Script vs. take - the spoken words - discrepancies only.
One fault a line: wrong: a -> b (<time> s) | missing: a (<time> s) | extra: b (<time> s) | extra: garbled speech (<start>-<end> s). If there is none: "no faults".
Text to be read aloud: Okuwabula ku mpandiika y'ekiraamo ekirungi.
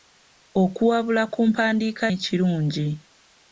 missing: y'ekiraamo (2.0 s)